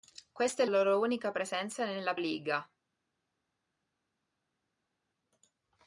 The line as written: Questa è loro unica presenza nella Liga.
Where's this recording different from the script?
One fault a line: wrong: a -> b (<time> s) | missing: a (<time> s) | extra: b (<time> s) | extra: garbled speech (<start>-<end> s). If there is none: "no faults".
no faults